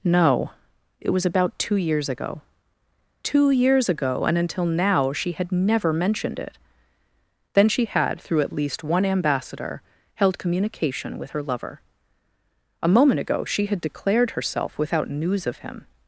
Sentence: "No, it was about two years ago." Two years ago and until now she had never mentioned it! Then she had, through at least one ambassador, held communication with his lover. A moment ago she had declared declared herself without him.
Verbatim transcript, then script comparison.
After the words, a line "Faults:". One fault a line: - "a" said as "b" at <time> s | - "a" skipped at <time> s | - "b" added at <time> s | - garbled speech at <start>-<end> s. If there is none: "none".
"No, it was about two years ago." Two years ago and until now she had never mentioned it! Then she had, through at least one ambassador, held communication with her lover. A moment ago she had declared herself without news of him.
Faults:
- "his" said as "her" at 11.3 s
- "declared" skipped at 14.3 s
- "news of" added at 15.1 s